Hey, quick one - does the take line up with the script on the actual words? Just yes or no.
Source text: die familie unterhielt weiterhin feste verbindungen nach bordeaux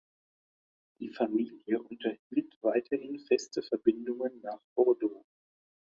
yes